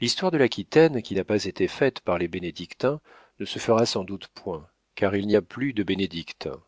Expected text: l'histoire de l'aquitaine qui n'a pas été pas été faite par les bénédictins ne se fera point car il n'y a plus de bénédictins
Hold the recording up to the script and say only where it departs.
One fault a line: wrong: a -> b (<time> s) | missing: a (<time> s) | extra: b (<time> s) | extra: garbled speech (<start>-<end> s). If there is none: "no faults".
missing: pas été (1.7 s)
extra: sans doute (3.8 s)